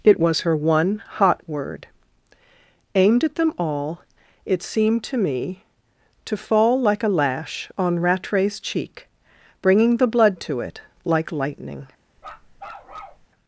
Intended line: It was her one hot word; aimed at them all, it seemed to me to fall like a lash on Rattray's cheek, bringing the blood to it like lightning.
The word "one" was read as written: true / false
true